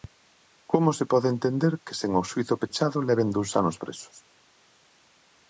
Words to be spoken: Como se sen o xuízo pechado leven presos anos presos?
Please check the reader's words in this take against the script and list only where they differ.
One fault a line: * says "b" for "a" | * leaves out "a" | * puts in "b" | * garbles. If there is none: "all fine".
* puts in "pode entender que"
* says "dous" for "presos"